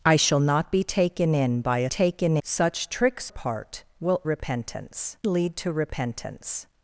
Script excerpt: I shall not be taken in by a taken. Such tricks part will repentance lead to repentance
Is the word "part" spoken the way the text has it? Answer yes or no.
yes